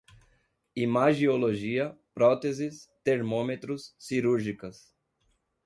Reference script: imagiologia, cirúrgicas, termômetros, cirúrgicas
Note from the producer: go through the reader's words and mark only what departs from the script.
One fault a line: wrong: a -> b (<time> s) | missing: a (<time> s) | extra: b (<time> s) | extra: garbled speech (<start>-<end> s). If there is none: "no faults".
wrong: cirúrgicas -> próteses (2.1 s)